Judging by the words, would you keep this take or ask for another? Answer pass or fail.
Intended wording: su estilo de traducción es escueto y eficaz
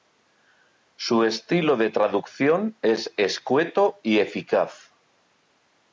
pass